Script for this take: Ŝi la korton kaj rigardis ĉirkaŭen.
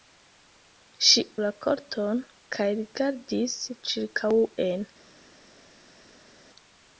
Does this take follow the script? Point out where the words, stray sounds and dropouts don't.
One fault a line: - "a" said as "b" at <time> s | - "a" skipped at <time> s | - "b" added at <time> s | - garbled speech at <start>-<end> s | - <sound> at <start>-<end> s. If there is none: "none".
none